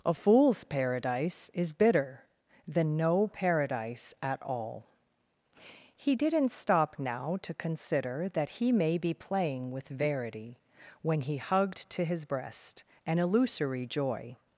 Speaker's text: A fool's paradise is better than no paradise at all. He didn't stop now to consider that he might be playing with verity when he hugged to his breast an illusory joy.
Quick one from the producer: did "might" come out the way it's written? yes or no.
no